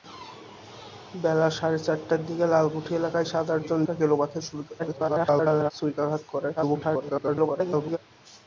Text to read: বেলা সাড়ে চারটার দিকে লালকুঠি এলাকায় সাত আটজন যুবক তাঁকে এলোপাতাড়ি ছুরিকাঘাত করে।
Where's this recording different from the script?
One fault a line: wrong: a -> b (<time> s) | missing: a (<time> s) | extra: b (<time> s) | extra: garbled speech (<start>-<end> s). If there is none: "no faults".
missing: যুবক (3.8 s)
extra: garbled speech (4.8-5.7 s)
extra: garbled speech (6.6-8.0 s)